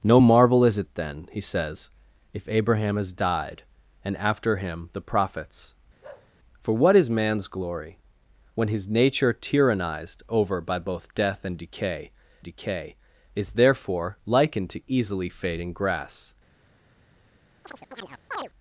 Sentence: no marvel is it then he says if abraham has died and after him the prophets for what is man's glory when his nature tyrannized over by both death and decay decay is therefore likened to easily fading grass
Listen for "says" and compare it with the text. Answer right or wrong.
right